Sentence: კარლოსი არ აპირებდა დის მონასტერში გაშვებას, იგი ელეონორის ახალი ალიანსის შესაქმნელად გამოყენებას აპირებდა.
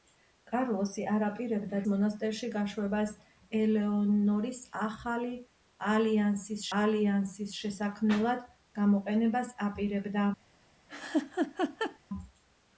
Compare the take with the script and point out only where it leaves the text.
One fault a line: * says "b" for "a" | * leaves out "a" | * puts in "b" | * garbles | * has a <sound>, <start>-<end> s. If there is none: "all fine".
* leaves out "დის"
* leaves out "იგი"
* puts in "ალიანსის"
* has a laugh, 10.9-12.0 s